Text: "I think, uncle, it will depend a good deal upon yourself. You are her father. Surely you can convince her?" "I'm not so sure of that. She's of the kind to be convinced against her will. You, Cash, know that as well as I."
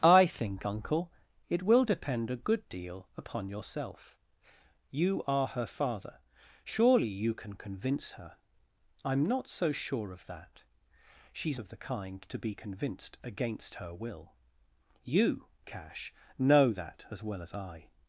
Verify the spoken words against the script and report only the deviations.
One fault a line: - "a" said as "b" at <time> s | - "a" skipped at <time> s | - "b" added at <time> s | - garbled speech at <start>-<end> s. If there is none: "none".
none